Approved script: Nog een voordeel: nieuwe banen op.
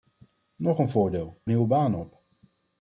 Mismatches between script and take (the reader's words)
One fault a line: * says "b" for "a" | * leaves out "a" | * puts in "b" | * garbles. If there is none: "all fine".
all fine